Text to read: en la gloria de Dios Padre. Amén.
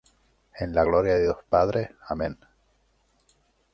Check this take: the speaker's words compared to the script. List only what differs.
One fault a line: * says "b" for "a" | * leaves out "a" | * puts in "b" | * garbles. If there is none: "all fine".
all fine